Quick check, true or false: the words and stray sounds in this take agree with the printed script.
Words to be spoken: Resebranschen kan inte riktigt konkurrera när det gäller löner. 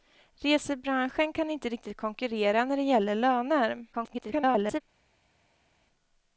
false